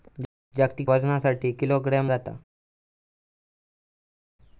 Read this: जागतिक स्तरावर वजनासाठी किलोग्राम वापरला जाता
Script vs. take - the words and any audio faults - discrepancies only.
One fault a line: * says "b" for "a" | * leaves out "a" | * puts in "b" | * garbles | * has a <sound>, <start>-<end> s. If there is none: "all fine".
* leaves out "स्तरावर"
* leaves out "वापरला"